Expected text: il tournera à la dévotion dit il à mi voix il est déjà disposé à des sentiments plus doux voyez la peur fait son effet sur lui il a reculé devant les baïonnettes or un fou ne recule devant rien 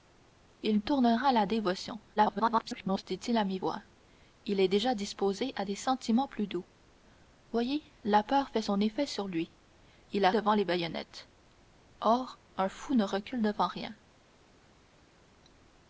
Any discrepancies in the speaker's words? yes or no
yes